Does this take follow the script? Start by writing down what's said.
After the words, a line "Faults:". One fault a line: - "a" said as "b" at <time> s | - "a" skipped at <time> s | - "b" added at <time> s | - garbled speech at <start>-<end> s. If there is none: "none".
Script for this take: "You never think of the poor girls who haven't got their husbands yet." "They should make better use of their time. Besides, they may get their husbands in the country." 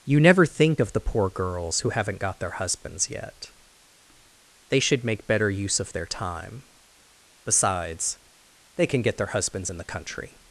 "You never think of the poor girls who haven't got their husbands yet." "They should make better use of their time. Besides, they can get their husbands in the country."
Faults:
- "may" said as "can" at 8.9 s